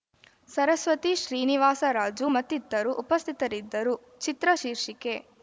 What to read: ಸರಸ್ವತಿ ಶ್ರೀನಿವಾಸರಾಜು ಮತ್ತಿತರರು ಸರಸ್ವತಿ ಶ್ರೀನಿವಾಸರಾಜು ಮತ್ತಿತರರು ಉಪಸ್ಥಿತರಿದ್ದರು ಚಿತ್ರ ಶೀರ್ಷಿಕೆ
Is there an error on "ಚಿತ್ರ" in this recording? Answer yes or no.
no